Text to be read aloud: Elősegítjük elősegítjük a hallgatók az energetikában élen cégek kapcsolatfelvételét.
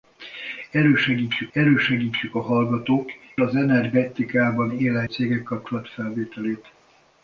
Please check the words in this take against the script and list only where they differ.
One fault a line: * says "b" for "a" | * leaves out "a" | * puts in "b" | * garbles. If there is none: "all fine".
all fine